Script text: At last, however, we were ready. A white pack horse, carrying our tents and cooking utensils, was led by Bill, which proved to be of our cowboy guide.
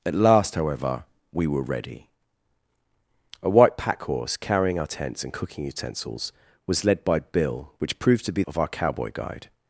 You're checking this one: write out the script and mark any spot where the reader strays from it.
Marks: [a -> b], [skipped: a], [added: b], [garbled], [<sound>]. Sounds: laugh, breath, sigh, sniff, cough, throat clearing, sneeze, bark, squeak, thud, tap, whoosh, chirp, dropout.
At last, however, we were ready. A white pack horse, carrying our tents and cooking utensils, was led by Bill, which proved to be of our cowboy guide.